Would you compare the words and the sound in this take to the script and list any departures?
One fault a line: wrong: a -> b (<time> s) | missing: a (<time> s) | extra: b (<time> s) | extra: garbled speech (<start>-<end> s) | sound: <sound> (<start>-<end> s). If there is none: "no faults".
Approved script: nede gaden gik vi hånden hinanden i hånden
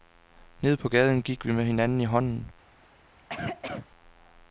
extra: på (0.8 s)
wrong: hånden -> med (1.5 s)
sound: cough (3.2-3.9 s)